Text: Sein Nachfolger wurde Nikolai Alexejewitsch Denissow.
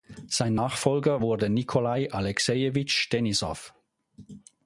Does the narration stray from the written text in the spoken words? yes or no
no